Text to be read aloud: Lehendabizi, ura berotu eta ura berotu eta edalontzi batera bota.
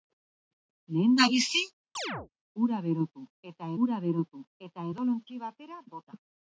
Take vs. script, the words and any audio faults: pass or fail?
fail